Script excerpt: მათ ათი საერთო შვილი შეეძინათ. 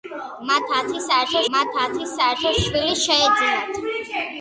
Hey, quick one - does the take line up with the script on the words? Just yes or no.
no